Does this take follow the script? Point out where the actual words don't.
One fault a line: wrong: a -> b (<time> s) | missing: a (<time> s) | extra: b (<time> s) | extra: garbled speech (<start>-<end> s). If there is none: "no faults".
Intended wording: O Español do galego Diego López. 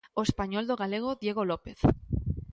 no faults